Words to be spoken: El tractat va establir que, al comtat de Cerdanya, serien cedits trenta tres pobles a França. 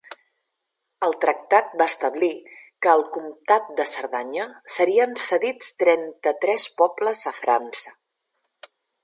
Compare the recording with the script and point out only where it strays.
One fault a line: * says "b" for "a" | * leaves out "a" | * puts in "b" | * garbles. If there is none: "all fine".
all fine